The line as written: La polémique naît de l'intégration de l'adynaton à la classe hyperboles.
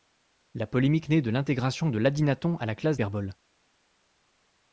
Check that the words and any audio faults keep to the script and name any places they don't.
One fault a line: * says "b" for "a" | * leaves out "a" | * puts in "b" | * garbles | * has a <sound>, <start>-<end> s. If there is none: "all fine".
all fine